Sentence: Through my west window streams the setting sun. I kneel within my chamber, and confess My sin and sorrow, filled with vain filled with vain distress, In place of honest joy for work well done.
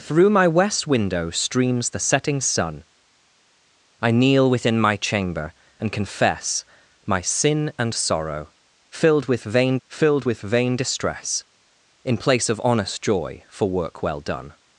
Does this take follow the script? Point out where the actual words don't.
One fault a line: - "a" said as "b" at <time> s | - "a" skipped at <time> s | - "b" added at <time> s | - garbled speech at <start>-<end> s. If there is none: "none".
none